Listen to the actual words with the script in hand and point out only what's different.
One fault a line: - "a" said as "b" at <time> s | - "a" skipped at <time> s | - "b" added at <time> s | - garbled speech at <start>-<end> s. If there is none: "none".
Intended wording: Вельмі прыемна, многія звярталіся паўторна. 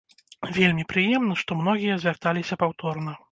- "што" added at 1.4 s